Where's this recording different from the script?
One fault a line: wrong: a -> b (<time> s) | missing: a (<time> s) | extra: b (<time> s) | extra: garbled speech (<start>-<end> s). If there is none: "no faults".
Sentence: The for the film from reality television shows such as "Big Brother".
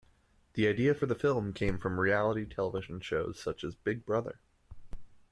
extra: idea (0.7 s)
extra: came (1.5 s)